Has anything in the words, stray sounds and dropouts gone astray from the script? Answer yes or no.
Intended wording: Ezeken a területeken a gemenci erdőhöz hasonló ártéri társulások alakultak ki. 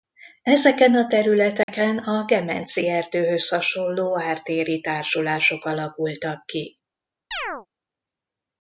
yes